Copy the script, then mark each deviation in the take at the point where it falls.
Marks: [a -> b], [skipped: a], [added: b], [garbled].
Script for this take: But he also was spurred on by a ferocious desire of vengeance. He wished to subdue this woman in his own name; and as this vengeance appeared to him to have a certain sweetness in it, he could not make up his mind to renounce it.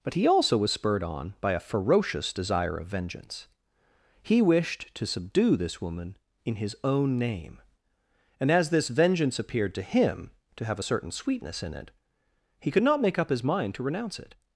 But he also was spurred on by a ferocious desire of vengeance. He wished to subdue this woman in his own name; and as this vengeance appeared to him to have a certain sweetness in it, he could not make up his mind to renounce it.